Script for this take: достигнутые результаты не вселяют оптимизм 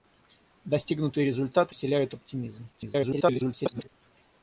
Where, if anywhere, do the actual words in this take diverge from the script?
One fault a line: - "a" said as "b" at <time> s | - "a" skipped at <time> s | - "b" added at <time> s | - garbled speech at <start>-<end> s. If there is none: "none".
- "не" skipped at 1.8 s
- garbled speech at 2.7-3.9 s